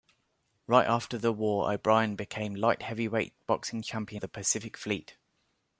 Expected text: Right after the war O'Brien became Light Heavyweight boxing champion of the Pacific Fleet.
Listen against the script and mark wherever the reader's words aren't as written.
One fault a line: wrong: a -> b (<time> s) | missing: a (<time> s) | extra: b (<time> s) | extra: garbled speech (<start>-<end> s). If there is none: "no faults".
missing: of (4.2 s)